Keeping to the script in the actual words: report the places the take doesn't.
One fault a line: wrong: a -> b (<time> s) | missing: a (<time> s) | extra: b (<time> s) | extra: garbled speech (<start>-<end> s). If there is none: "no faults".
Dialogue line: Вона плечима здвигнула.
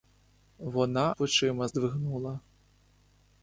no faults